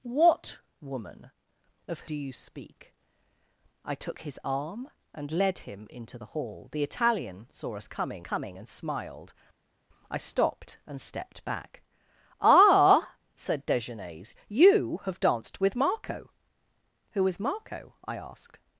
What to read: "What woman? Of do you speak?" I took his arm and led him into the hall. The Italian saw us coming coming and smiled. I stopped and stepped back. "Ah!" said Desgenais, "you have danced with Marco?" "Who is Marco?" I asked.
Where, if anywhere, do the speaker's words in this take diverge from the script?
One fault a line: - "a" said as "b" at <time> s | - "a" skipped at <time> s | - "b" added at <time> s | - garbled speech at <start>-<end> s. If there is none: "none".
none